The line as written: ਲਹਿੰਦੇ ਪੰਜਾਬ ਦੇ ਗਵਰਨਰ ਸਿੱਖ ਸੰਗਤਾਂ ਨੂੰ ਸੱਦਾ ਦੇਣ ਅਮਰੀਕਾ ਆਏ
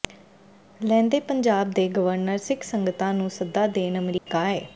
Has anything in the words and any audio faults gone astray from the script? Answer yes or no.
yes